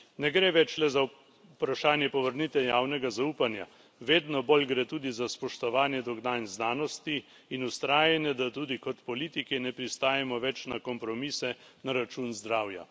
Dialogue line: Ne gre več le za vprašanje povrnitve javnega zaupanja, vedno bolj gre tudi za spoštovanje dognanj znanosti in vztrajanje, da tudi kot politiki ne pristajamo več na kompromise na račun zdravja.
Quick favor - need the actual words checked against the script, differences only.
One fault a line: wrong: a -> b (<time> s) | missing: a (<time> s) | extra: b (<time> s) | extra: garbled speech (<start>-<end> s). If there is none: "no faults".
no faults